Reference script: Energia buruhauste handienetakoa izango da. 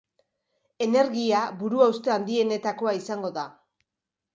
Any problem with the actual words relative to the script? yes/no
no